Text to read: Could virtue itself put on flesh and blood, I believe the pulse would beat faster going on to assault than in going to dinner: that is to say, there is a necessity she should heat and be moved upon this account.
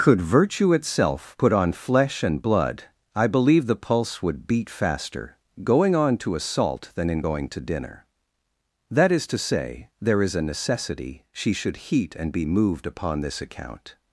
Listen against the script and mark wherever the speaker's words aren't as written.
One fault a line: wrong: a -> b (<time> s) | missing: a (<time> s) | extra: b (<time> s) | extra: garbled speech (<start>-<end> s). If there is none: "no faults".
no faults